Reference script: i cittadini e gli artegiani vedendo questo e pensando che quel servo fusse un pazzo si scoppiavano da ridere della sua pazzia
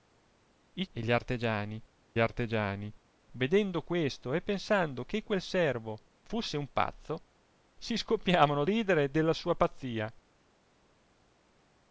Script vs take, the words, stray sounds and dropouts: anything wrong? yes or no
yes